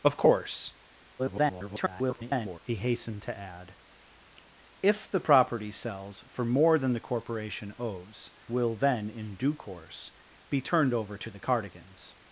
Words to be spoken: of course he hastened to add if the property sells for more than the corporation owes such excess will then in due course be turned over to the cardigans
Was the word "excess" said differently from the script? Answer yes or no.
yes